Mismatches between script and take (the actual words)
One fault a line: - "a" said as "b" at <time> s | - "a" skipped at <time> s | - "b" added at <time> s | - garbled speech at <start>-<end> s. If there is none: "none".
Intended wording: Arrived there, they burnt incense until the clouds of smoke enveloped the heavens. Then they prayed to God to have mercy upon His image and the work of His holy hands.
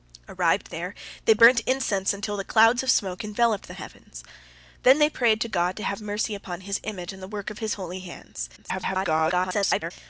- garbled speech at 8.6-9.9 s